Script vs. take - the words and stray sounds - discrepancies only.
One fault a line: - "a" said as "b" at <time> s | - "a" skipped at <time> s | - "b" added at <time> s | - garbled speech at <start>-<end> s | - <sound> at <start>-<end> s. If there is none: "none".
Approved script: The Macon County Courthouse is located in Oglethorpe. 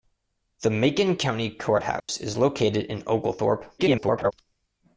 - dropout at 2.0-2.1 s
- garbled speech at 3.8-4.3 s